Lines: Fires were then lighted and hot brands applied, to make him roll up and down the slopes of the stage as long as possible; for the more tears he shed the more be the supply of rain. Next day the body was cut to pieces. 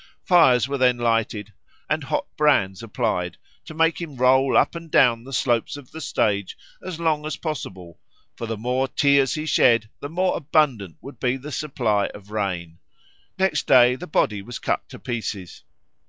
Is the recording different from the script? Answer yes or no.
yes